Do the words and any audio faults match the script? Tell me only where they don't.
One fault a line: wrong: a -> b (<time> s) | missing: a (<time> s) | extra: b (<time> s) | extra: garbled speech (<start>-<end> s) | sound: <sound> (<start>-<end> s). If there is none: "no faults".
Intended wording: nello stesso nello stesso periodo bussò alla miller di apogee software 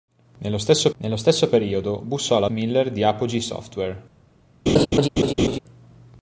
sound: laugh (4.7-5.6 s)